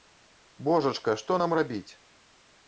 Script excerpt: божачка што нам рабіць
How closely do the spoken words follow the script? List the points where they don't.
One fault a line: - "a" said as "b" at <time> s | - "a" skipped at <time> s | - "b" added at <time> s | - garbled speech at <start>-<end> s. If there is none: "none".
none